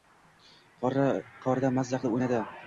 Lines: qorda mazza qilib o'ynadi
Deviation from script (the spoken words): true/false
false